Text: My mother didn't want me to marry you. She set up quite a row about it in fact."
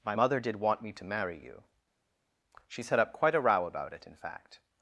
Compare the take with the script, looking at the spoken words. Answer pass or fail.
fail